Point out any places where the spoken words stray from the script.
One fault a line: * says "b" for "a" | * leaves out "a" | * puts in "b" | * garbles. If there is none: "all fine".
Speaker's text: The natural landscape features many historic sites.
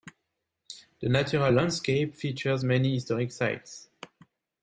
all fine